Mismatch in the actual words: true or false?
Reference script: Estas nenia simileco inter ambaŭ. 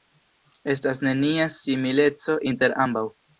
false